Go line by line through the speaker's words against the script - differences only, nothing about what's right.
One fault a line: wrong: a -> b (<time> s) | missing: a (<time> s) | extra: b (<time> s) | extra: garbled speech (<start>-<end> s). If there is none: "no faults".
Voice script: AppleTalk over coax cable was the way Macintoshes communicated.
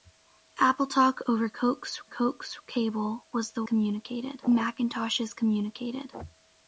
extra: coax (2.0 s)
wrong: way -> communicated (3.7 s)